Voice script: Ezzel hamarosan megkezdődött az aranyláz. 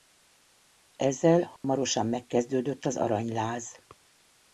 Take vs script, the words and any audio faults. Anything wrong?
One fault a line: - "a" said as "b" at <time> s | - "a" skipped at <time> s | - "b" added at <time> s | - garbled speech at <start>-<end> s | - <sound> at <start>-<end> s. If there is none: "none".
- dropout at 1.6-1.6 s